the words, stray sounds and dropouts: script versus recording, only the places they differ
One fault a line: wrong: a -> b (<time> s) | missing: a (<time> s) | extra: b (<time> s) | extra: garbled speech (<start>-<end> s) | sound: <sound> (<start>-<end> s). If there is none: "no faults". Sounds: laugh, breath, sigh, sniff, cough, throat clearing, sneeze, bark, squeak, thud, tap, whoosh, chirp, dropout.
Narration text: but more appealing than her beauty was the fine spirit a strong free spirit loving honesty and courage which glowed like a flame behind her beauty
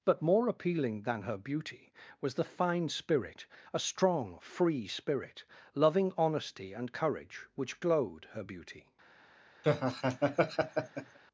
missing: like a flame behind (8.3 s)
sound: laugh (9.6-11.2 s)